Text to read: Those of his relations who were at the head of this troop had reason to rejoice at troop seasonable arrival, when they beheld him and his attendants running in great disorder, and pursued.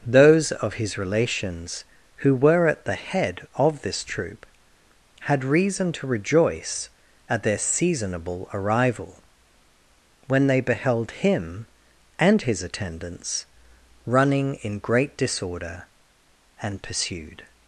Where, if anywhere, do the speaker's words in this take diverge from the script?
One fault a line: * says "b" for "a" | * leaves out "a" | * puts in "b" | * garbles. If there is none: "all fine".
* says "their" for "troop"